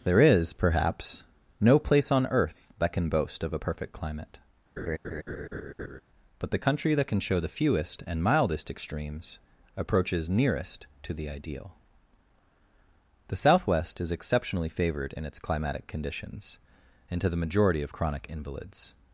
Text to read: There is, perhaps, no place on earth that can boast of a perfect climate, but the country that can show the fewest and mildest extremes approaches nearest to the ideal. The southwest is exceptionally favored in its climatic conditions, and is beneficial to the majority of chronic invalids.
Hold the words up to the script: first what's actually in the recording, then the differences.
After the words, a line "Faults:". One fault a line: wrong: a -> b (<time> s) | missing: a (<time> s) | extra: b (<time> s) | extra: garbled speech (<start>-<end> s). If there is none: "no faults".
There is, perhaps, no place on earth that can boast of a perfect climate, but the country that can show the fewest and mildest extremes approaches nearest to the ideal. The southwest is exceptionally favored in its climatic conditions, and to the majority of chronic invalids.
Faults:
missing: is beneficial (17.2 s)